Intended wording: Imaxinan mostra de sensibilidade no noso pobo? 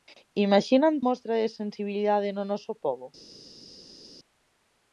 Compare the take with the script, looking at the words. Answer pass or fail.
pass